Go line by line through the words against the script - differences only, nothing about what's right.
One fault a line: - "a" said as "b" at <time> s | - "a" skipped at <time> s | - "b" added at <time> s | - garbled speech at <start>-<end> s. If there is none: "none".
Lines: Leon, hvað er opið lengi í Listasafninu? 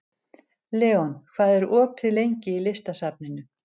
none